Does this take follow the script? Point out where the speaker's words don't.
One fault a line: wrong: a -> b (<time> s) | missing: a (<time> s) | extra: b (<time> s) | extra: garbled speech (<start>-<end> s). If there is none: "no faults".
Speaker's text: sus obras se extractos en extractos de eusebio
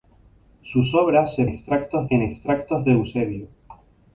no faults